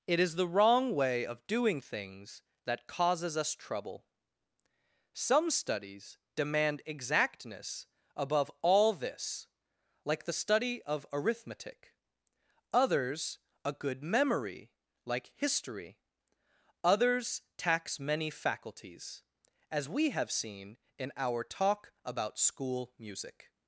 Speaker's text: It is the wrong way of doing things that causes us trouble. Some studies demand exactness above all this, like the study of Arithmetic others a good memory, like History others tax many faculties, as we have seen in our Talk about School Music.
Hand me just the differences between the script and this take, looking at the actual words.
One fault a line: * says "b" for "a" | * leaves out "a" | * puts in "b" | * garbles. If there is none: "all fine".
all fine